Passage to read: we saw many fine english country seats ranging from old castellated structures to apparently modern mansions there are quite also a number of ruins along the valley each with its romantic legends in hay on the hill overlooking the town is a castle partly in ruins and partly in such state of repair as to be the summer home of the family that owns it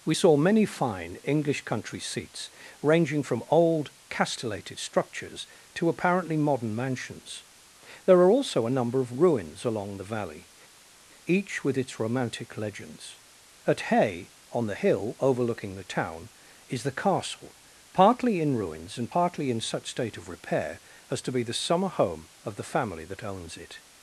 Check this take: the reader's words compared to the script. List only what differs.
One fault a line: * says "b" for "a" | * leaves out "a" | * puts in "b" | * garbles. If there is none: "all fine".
* leaves out "quite"
* says "at" for "in"
* says "the" for "a"